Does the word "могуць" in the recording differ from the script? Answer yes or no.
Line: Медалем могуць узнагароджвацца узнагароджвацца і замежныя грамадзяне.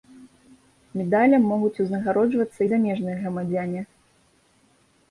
no